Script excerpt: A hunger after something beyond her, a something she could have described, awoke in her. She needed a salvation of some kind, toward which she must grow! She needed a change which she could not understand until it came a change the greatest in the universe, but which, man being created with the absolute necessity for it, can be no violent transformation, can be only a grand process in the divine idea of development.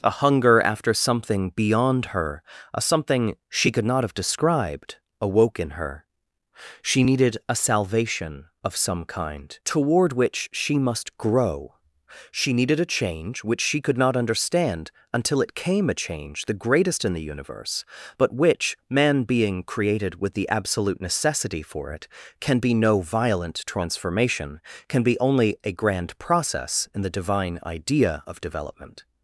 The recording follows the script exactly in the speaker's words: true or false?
false